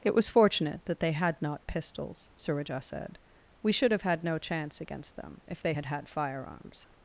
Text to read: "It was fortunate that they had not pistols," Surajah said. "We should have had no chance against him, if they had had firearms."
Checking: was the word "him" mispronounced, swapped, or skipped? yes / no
yes